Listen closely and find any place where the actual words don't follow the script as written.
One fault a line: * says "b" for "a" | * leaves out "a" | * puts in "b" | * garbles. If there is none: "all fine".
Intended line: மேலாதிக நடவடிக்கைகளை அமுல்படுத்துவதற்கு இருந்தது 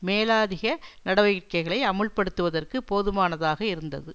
* puts in "போதுமானதாக"